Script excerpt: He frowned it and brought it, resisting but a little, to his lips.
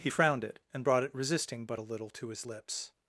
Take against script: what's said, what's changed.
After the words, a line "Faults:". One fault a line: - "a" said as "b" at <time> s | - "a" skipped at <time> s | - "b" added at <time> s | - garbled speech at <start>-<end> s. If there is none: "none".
He frowned it and brought it, resisting but a little, to his lips.
Faults:
none